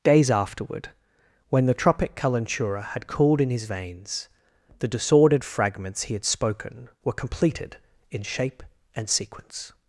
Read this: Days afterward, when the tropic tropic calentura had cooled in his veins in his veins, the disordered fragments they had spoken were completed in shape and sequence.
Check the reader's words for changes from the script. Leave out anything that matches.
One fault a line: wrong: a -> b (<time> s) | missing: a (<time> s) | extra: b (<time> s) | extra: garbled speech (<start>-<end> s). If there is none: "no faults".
missing: tropic (2.1 s)
missing: in his veins (4.3 s)
wrong: they -> he (6.0 s)